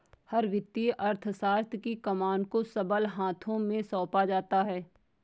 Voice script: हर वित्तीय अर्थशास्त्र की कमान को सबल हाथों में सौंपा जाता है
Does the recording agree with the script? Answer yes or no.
yes